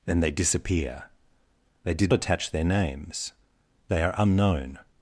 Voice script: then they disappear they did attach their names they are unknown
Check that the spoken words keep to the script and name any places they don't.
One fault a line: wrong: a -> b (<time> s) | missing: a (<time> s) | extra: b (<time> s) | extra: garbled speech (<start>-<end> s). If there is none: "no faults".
no faults